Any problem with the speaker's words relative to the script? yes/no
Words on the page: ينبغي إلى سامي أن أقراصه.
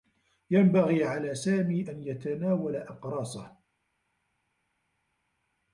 yes